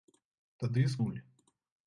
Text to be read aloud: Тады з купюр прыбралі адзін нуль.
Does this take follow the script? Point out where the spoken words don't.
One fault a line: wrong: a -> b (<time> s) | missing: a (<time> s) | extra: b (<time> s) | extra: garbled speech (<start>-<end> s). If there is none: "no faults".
missing: купюр прыбралі адзін (1.0 s)